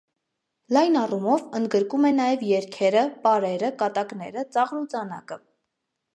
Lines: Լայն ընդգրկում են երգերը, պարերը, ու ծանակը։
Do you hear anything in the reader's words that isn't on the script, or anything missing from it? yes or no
yes